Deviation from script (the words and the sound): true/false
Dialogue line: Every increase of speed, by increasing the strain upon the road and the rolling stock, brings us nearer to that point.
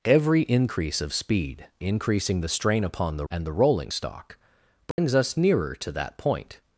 true